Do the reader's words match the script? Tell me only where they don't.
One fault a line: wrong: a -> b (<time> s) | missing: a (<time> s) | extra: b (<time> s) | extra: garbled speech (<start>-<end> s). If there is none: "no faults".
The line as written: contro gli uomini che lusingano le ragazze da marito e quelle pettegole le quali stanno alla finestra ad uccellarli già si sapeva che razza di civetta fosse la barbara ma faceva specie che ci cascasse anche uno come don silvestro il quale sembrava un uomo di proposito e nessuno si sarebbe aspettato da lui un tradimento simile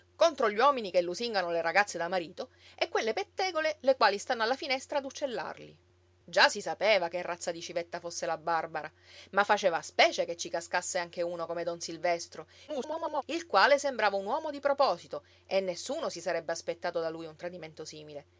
extra: garbled speech (12.7-13.2 s)